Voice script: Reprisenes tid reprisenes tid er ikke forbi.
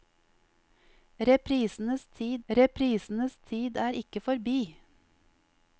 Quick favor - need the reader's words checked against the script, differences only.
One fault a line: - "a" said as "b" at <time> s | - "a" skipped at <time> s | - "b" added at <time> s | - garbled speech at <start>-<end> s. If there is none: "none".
none